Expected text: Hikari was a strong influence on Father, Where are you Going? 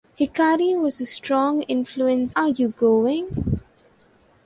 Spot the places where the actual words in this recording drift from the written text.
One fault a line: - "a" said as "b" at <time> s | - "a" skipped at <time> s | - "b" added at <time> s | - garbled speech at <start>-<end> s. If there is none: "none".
- "on Father Where" skipped at 2.4 s